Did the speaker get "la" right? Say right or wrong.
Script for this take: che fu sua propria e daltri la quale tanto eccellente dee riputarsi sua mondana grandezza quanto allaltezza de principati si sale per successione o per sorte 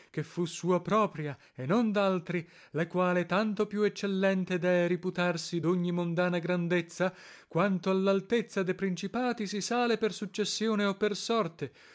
right